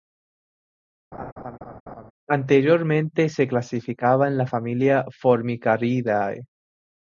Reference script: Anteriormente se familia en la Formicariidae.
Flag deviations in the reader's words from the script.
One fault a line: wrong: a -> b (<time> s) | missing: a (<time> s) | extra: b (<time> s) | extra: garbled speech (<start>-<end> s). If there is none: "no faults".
wrong: familia -> clasificaba (3.5 s)
extra: familia (4.4 s)